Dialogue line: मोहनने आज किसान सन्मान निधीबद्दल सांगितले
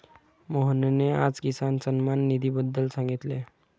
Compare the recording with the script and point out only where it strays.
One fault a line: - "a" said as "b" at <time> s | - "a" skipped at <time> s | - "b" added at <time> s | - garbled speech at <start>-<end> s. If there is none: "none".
none